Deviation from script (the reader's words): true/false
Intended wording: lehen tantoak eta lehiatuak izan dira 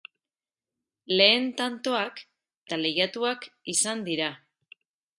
false